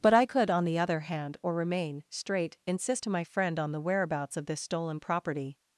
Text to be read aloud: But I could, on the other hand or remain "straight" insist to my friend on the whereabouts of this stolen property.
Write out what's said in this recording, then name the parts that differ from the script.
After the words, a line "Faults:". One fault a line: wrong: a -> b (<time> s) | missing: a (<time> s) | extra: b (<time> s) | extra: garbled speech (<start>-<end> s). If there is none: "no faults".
But I could, on the other hand or remain "straight" insist to my friend on the whereabouts of this stolen property.
Faults:
no faults